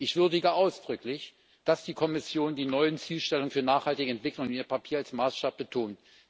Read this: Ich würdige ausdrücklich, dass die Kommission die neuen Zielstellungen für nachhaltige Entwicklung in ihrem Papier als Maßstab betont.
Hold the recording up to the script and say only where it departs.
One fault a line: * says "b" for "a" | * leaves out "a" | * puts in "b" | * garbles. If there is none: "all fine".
all fine